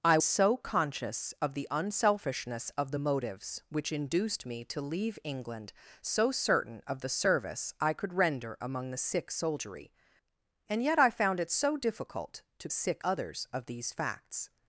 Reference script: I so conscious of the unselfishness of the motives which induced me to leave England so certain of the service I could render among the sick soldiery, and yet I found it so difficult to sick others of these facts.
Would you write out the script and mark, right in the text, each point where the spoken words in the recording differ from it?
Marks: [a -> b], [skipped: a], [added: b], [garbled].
I so conscious of the unselfishness of the motives which induced me to leave England so certain of the service I could render among the sick soldiery, and yet I found it so difficult to sick others of these facts.